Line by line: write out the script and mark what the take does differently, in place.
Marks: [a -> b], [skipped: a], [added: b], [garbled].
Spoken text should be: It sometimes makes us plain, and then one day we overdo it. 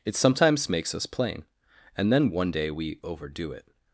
It sometimes makes us plain, and then one day we overdo it.